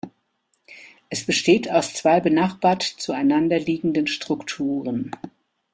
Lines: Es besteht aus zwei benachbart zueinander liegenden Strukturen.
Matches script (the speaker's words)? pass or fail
pass